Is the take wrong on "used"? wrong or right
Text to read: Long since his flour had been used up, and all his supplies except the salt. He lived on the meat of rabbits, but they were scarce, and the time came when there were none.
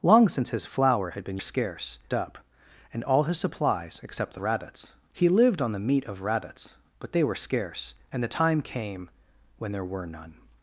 wrong